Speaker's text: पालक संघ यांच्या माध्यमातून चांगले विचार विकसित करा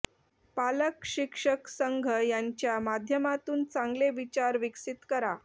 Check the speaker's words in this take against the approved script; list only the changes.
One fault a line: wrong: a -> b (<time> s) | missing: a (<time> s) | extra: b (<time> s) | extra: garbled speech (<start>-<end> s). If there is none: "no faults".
extra: शिक्षक (1.1 s)